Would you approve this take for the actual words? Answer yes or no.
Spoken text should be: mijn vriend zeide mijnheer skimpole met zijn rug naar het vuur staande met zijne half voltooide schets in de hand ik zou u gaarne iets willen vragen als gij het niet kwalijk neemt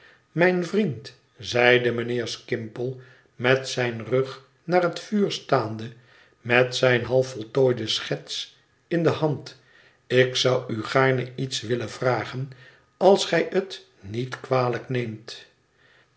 yes